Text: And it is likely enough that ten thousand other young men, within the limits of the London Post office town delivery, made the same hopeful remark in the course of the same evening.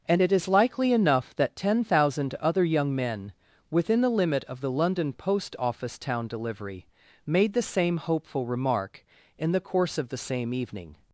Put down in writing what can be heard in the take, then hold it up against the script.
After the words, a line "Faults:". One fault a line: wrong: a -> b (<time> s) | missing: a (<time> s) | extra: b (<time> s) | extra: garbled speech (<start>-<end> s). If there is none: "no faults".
And it is likely enough that ten thousand other young men, within the limit of the London Post office town delivery, made the same hopeful remark in the course of the same evening.
Faults:
wrong: limits -> limit (4.1 s)